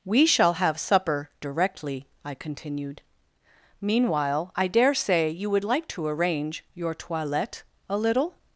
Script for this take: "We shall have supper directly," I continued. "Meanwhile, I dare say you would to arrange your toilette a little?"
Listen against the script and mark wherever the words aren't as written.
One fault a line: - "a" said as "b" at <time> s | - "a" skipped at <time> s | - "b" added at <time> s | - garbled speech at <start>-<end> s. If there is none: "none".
- "like" added at 5.6 s